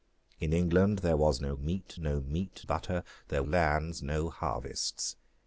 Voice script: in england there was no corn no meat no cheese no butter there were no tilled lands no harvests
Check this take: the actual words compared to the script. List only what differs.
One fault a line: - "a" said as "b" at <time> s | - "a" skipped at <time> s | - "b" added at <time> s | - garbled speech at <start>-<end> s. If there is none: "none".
- "corn" said as "meat" at 1.5 s
- "no cheese no" skipped at 2.6 s
- "were no tilled" skipped at 3.4 s